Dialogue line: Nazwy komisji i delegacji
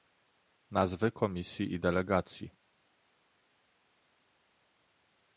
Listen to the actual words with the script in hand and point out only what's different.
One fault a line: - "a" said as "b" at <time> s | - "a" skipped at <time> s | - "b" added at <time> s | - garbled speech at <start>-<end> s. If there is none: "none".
none